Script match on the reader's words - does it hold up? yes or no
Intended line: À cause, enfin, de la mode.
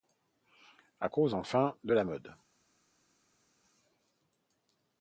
yes